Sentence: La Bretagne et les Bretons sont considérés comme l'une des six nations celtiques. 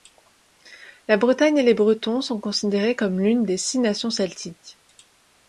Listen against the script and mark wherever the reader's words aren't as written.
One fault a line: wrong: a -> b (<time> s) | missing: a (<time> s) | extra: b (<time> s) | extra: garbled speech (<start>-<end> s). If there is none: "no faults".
no faults